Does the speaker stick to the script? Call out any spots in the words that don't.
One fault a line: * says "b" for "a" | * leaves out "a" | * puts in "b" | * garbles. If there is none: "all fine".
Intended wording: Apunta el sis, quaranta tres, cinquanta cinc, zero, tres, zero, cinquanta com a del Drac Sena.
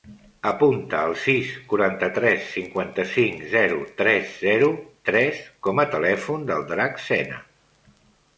* says "tres" for "cinquanta"
* puts in "telèfon"